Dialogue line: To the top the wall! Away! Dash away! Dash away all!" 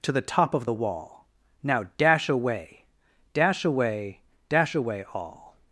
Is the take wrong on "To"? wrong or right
right